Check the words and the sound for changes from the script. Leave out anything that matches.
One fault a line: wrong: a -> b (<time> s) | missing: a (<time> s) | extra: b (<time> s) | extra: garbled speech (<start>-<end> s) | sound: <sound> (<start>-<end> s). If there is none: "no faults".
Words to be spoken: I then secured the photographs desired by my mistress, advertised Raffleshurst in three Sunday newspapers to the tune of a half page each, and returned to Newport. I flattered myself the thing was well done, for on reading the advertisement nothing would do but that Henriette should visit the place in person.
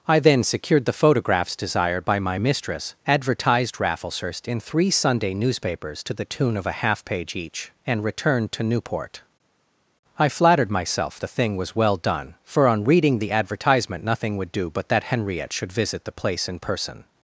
no faults